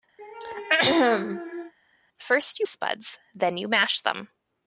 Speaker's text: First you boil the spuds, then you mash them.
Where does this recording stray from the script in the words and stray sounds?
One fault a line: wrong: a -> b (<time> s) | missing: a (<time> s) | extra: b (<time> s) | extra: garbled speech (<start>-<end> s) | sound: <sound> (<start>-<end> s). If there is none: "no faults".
sound: throat clearing (0.2-1.7 s)
missing: boil the (2.7 s)